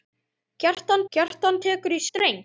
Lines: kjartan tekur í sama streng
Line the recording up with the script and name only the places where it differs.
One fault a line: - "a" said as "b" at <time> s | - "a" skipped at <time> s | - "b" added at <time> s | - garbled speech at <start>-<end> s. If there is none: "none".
- "kjartan" added at 1.2 s
- "sama" skipped at 2.0 s